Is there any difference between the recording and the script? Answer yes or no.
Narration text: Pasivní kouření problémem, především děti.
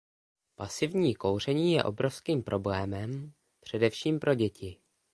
yes